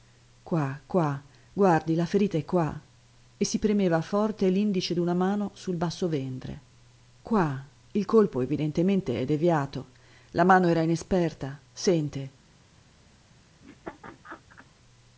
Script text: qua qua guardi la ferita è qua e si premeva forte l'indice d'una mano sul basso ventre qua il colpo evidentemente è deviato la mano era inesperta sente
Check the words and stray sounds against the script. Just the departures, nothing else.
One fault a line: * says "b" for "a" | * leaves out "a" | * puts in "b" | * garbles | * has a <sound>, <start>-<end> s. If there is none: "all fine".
* has a laugh, 13.6-14.7 s